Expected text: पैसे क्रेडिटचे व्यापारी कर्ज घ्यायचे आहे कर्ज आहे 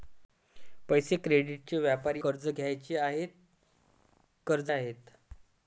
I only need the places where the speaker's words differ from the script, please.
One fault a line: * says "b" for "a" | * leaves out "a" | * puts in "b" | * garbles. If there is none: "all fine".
all fine